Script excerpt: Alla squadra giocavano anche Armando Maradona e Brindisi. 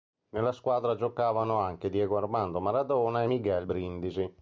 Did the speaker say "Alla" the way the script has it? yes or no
no